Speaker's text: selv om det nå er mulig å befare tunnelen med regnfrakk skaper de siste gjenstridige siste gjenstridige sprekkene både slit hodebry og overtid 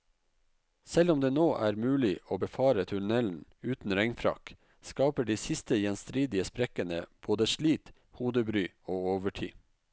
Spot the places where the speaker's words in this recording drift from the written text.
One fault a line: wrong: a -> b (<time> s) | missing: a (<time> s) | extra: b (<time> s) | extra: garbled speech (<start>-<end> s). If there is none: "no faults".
wrong: med -> uten (3.6 s)
missing: siste gjenstridige (6.5 s)